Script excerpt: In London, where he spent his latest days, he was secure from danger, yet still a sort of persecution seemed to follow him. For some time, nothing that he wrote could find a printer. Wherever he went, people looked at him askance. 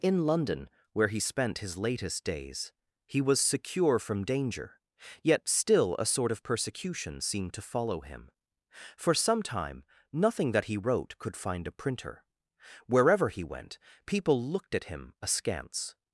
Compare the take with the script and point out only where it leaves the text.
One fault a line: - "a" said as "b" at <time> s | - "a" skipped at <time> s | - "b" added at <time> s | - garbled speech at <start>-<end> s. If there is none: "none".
none